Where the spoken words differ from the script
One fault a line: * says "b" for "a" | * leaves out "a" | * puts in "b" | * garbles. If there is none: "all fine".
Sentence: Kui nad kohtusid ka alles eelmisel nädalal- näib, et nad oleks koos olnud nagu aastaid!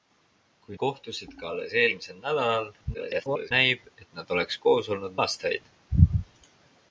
* leaves out "nad"
* garbles
* leaves out "nagu"